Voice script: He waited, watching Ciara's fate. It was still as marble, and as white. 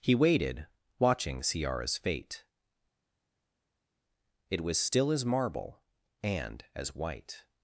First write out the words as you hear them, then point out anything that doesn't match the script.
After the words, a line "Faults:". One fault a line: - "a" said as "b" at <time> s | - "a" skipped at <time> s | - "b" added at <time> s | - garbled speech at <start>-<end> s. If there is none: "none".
He waited, watching Ciara's fate. It was still as marble, and as white.
Faults:
none